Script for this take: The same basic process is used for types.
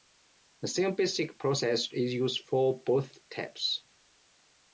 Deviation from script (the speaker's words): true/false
true